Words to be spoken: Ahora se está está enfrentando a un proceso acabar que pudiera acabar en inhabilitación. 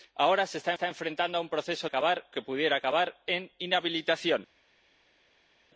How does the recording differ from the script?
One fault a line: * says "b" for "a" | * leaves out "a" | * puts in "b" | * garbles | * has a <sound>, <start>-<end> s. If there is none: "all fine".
all fine